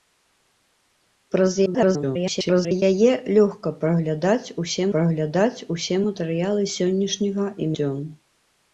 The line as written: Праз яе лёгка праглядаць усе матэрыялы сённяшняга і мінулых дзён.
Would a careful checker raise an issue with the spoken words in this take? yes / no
yes